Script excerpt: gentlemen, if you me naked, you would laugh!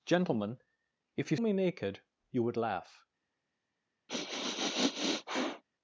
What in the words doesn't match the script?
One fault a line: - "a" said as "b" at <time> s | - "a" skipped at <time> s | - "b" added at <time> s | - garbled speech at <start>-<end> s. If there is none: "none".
none